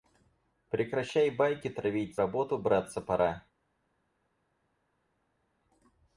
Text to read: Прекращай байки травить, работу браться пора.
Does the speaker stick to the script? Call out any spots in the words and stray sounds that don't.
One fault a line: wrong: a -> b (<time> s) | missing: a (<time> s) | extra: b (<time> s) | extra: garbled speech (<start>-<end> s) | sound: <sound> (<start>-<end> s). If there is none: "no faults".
no faults